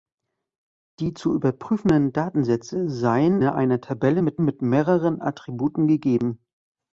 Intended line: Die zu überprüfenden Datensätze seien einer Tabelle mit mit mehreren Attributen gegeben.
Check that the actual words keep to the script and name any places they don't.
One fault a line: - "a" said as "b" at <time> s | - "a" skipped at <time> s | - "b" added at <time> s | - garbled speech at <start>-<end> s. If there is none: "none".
none